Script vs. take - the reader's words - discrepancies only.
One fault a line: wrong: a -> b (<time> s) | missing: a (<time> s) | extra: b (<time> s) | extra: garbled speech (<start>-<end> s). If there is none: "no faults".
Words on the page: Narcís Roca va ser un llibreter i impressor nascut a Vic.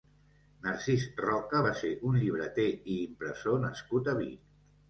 no faults